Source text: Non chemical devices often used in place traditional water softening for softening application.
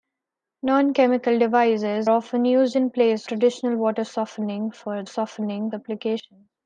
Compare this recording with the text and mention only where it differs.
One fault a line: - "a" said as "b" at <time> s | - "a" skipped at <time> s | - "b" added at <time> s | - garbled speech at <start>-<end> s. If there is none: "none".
none